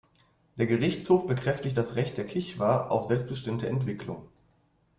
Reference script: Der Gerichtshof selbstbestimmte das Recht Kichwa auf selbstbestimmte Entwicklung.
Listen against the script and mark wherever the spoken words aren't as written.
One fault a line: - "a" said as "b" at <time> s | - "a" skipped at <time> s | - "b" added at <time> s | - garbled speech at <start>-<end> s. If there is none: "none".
- "selbstbestimmte" said as "bekräftigt" at 1.3 s
- "der" added at 2.2 s